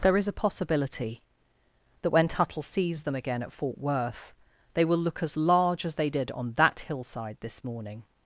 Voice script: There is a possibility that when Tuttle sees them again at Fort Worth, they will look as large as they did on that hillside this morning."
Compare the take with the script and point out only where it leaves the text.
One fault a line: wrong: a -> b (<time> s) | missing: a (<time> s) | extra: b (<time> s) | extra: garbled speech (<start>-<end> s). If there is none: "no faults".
no faults